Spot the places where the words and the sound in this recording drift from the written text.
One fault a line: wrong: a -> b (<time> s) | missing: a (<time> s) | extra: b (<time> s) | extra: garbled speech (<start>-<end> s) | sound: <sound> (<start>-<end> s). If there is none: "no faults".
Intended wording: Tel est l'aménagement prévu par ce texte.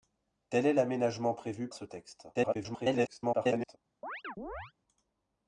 missing: par (1.7 s)
extra: garbled speech (2.3-3.8 s)
sound: chirp (4.0-4.7 s)